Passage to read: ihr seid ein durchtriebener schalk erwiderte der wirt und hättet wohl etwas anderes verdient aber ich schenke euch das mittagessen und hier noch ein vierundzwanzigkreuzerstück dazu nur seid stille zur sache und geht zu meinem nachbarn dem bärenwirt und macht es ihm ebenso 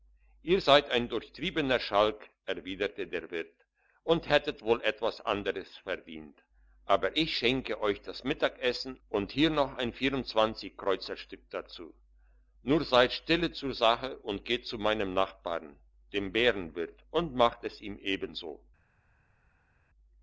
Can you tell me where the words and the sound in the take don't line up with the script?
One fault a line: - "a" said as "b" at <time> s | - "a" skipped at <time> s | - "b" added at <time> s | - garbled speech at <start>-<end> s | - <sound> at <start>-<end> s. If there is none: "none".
none